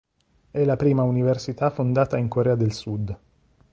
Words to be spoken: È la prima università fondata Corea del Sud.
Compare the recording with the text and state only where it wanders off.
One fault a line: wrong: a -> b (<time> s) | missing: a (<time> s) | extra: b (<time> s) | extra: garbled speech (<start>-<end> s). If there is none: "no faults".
extra: in (2.2 s)